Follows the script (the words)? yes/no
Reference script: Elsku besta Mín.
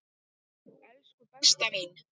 yes